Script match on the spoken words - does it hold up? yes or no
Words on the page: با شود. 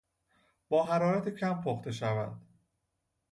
no